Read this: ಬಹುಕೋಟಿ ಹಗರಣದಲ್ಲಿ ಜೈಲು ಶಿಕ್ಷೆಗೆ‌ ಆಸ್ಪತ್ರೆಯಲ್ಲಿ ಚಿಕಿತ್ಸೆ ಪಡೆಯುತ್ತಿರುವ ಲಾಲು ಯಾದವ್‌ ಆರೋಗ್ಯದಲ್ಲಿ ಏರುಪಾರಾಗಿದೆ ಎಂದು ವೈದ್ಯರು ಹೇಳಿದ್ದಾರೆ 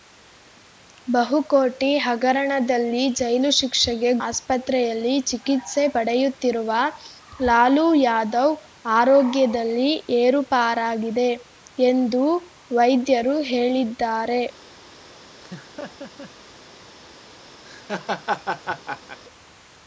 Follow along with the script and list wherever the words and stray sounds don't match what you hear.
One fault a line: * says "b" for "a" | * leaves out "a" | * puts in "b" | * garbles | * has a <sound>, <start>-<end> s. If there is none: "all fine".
* has a laugh, 15.4-16.3 s
* has a laugh, 17.6-19.2 s